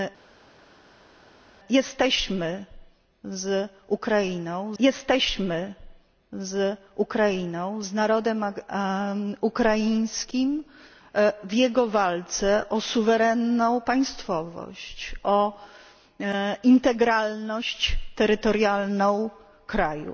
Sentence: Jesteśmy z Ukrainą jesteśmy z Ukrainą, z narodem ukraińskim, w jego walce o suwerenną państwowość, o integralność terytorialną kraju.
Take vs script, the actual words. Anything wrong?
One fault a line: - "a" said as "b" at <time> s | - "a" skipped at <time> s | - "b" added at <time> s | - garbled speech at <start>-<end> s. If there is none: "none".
none